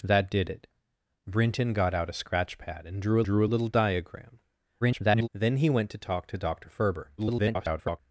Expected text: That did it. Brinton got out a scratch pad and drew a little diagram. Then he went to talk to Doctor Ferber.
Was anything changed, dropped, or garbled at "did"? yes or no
no